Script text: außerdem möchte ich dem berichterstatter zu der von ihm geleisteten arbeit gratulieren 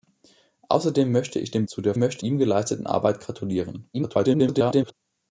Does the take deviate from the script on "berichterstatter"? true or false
true